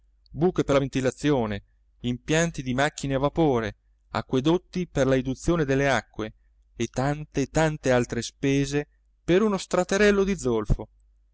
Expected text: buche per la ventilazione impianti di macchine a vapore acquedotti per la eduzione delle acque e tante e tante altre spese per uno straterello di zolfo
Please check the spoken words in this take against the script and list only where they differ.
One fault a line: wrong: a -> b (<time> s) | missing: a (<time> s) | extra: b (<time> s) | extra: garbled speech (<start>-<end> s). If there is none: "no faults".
no faults